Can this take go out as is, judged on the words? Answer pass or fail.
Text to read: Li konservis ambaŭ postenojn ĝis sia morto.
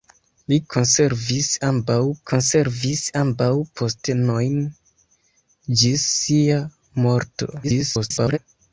fail